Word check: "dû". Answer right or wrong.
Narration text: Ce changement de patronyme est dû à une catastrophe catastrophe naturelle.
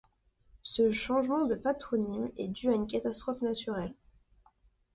right